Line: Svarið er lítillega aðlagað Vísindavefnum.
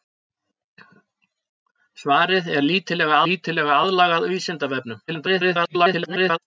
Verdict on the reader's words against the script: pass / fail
fail